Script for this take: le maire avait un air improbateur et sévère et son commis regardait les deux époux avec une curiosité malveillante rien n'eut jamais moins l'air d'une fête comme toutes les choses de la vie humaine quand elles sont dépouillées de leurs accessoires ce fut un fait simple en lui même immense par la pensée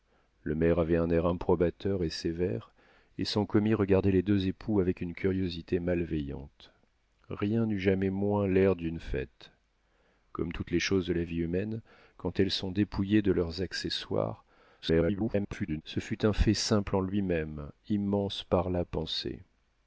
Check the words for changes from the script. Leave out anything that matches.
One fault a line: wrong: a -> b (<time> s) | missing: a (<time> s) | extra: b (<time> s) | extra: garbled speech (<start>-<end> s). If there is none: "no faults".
extra: garbled speech (14.8-15.8 s)